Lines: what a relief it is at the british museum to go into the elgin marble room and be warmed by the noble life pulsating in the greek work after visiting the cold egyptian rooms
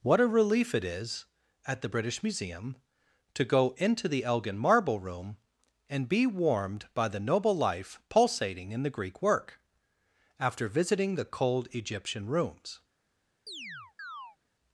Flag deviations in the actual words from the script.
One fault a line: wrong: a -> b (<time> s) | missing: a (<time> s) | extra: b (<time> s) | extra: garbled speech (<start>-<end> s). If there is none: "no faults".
no faults